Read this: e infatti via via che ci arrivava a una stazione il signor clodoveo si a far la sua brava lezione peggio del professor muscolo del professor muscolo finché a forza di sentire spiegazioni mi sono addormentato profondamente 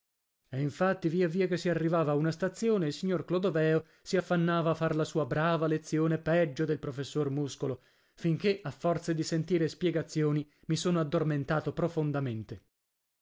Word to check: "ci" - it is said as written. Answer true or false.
false